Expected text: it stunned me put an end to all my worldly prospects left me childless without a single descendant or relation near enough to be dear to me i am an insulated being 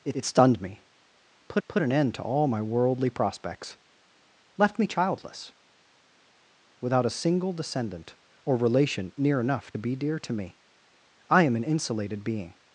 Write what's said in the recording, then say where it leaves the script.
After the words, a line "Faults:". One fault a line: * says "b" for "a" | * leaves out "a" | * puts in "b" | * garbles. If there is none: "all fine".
it it stunned me put put an end to all my worldly prospects left me childless without a single descendant or relation near enough be dear to me i am an insulated being
Faults:
* puts in "it"
* puts in "put"
* leaves out "to"